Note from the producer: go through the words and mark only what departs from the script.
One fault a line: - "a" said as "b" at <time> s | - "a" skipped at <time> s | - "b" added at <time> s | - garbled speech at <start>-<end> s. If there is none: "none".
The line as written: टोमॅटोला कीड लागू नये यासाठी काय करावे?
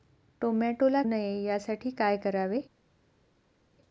- "कीड लागू" skipped at 1.0 s